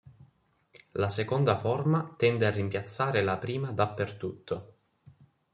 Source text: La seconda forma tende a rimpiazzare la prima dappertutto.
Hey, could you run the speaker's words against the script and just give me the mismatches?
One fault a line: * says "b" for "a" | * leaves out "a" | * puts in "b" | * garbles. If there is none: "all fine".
all fine